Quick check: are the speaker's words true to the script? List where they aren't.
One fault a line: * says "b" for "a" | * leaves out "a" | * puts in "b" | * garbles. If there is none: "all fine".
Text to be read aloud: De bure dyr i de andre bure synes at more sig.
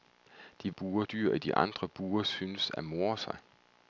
all fine